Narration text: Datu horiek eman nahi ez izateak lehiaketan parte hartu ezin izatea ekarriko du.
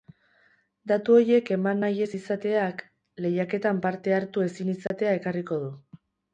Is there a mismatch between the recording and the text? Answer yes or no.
no